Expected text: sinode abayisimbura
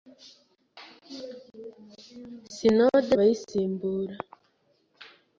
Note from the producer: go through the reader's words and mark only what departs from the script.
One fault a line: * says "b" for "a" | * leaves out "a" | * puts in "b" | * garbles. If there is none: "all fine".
all fine